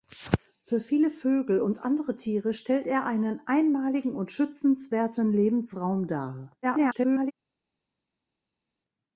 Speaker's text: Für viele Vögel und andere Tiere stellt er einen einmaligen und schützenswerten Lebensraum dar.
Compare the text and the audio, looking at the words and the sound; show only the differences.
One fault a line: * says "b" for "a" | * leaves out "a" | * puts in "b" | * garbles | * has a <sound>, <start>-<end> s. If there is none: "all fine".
* garbles